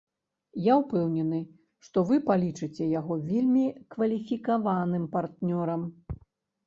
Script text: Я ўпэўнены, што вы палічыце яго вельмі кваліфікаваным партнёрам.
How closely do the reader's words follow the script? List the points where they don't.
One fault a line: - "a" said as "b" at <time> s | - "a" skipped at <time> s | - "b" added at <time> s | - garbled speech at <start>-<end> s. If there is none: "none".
none